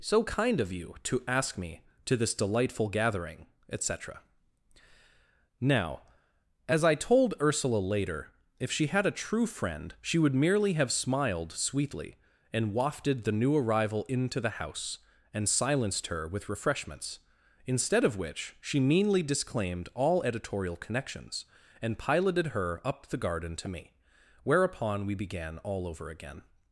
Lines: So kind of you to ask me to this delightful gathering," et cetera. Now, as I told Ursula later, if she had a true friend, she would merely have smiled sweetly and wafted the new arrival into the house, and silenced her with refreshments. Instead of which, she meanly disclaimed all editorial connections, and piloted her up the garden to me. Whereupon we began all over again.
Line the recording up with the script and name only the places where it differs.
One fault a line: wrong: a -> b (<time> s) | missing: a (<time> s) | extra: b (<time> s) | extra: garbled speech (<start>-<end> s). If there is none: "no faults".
no faults